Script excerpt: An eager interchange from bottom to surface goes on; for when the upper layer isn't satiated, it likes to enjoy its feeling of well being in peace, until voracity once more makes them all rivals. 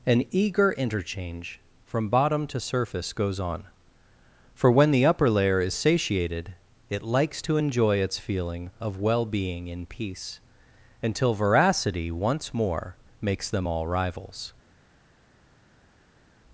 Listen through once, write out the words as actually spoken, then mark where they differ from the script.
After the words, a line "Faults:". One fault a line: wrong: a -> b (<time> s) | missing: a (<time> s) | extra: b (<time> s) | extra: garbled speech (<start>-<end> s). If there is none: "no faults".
An eager interchange from bottom to surface goes on; for when the upper layer is satiated, it likes to enjoy its feeling of well being in peace, until voracity once more makes them all rivals.
Faults:
wrong: isn't -> is (5.6 s)